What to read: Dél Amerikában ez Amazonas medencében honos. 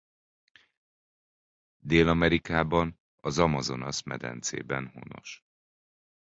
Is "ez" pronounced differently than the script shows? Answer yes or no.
yes